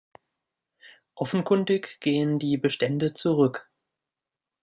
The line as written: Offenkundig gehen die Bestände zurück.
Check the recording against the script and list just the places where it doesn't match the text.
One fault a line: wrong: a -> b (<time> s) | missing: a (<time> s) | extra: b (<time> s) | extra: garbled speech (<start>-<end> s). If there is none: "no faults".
no faults